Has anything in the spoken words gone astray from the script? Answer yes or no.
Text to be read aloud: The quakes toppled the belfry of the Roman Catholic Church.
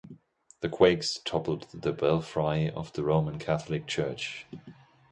no